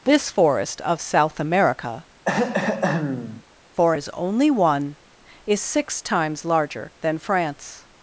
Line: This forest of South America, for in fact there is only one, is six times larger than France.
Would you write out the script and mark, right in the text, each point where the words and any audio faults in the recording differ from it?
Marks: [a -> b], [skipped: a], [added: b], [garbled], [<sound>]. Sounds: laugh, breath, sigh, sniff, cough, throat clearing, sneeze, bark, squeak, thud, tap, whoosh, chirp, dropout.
This forest of South America, [throat clearing] for [skipped: in fact there] is only one, is six times larger than France.